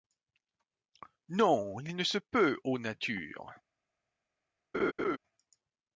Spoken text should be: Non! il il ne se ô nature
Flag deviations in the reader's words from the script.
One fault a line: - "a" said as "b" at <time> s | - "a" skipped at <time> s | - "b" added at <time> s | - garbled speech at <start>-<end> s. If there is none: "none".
- "il" skipped at 1.9 s
- "peut" added at 2.1 s